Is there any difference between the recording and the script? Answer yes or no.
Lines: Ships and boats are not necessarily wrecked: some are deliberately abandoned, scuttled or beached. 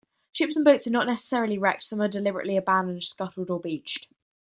no